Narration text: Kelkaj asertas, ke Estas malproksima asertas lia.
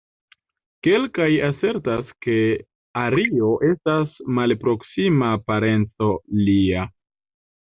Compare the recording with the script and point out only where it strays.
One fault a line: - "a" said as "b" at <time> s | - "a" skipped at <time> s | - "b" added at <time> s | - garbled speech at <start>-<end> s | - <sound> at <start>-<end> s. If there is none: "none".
- "Ario" added at 3.0 s
- "asertas" said as "parenco" at 5.5 s